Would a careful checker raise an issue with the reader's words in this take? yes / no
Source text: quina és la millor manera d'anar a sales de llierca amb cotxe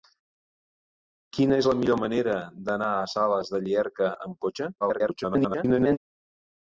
yes